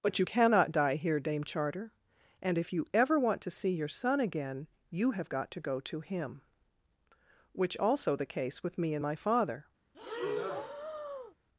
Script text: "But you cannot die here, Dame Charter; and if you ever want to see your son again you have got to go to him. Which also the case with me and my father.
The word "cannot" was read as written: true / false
true